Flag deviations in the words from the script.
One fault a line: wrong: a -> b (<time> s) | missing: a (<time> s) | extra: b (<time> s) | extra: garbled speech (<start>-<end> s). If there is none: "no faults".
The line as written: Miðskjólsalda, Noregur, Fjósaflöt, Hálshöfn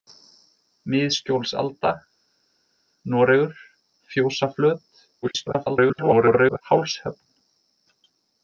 extra: garbled speech (5.2-6.6 s)